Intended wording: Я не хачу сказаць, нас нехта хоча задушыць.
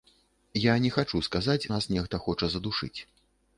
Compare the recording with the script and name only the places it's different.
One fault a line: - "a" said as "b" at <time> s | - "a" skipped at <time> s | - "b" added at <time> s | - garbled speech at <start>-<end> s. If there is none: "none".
none